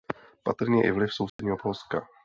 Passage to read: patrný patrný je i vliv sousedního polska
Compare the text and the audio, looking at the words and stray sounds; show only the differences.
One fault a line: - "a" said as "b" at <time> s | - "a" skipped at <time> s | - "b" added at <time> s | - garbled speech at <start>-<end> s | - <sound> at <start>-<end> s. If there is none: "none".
- "patrný" skipped at 0.8 s
- dropout at 1.3-1.4 s